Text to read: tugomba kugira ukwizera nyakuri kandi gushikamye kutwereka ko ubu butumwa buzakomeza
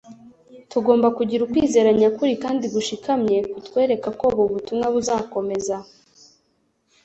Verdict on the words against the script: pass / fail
pass